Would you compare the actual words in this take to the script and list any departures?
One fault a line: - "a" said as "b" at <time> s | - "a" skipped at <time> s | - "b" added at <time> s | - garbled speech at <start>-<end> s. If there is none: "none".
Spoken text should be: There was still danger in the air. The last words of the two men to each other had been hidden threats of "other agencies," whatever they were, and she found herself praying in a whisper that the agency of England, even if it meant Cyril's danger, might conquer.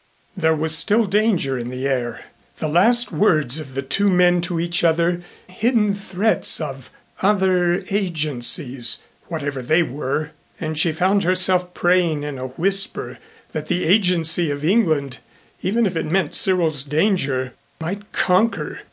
- "had been" skipped at 5.2 s